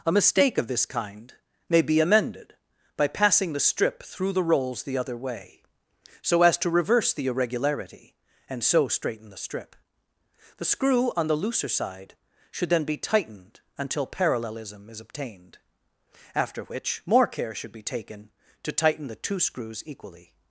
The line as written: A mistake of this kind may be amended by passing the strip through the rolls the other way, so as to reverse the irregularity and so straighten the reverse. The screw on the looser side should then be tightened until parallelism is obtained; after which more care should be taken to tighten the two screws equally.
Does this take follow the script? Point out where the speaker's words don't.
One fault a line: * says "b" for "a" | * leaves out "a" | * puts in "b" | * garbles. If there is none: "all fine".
* says "strip" for "reverse"